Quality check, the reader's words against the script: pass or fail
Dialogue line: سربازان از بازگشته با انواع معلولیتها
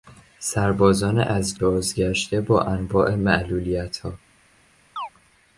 pass